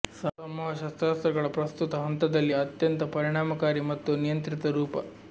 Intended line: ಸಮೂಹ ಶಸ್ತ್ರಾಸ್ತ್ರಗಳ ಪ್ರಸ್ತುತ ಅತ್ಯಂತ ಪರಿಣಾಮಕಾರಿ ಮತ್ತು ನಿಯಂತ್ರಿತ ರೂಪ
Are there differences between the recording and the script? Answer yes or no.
yes